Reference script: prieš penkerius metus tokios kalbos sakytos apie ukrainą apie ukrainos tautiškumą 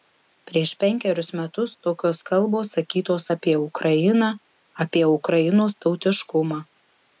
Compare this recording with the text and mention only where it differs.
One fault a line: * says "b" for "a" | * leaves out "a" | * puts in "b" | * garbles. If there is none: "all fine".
all fine